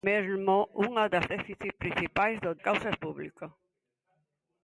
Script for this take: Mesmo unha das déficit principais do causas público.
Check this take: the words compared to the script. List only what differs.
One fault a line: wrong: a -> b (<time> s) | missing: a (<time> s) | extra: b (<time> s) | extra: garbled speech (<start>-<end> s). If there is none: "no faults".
no faults